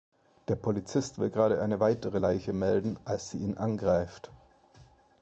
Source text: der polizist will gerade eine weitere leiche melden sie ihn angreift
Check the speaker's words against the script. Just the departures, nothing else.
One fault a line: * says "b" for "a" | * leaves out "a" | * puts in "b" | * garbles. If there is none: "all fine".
* puts in "als"